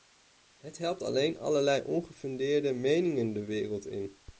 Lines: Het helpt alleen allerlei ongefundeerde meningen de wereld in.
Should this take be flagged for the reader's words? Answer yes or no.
no